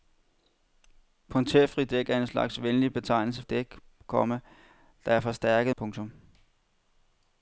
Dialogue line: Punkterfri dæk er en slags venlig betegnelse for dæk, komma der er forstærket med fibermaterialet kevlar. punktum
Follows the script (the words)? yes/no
no